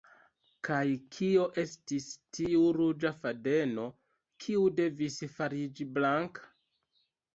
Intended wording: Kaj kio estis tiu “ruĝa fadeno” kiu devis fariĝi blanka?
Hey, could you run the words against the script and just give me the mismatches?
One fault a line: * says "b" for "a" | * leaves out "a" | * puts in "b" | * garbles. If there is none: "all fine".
all fine